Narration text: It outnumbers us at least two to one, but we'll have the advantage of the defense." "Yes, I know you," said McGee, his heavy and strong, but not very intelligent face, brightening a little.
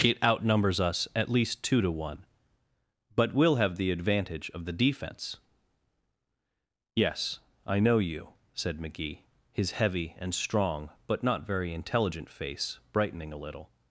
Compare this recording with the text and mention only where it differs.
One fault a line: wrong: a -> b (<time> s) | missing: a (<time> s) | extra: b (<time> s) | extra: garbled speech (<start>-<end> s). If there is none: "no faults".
no faults